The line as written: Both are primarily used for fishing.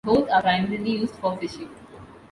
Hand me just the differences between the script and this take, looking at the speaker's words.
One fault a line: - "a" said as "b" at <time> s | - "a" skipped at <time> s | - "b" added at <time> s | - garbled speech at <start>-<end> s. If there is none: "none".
none